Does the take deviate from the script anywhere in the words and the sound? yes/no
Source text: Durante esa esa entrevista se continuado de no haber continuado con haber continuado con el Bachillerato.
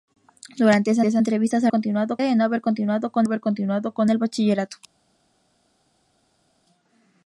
no